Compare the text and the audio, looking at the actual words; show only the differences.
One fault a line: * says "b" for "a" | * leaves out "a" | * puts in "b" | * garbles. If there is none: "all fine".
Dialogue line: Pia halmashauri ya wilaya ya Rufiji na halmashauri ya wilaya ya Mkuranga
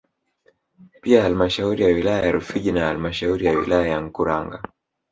all fine